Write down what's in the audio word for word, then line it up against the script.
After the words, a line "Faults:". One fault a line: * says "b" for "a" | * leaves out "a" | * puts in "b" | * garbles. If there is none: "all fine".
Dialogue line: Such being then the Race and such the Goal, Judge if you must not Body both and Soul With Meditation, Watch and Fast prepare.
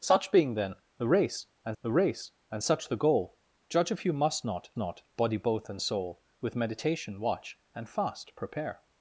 Such being then the Race and the Race and such the Goal, Judge if you must not not Body both and Soul With Meditation, Watch and Fast prepare.
Faults:
* puts in "the Race and"
* puts in "not"